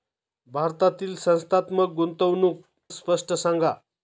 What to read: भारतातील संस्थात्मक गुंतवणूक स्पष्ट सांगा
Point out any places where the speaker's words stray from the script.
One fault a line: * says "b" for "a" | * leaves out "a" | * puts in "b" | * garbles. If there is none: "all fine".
all fine